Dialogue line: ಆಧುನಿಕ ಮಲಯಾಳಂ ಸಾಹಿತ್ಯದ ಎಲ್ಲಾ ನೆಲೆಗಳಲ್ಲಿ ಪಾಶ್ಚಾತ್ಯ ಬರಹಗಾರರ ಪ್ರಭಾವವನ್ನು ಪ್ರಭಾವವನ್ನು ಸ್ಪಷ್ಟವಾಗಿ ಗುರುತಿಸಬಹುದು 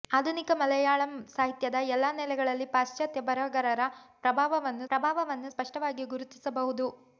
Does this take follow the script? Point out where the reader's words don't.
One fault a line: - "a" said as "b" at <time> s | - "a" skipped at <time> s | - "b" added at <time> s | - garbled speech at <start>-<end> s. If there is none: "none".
none